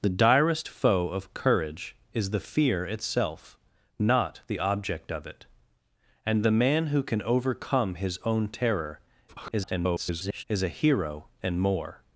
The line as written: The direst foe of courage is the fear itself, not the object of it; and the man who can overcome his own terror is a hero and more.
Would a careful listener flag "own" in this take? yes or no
no